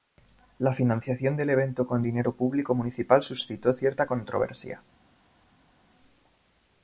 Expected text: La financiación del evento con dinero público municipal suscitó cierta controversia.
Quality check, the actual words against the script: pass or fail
pass